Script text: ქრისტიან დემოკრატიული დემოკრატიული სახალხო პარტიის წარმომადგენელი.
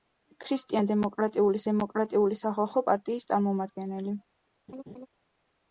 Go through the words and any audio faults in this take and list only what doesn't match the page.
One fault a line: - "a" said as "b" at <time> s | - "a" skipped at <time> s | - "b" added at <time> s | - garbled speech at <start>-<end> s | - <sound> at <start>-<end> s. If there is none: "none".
- laugh at 4.7-5.1 s